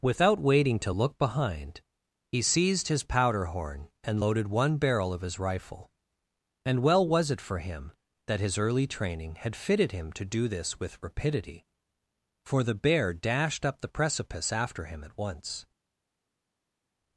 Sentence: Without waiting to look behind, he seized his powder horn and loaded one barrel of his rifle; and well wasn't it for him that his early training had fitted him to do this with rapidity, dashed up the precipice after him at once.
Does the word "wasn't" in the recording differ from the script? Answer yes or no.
yes